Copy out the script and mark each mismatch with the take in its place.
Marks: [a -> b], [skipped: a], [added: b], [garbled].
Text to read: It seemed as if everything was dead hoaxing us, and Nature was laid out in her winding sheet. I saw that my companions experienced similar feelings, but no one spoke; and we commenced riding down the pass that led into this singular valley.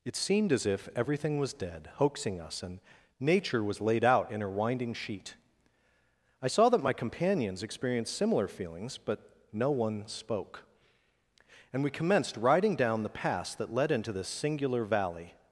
It seemed as if everything was dead hoaxing us, and Nature was laid out in her winding sheet. I saw that my companions experienced similar feelings, but no one spoke; and we commenced riding down the pass that led into this singular valley.